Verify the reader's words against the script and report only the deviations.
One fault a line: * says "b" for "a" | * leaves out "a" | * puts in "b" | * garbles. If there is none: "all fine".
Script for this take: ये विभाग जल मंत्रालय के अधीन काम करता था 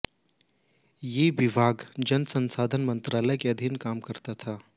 * puts in "संसाधन"